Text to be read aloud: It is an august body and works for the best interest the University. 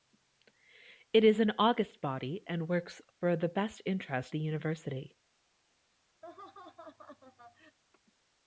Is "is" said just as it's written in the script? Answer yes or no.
yes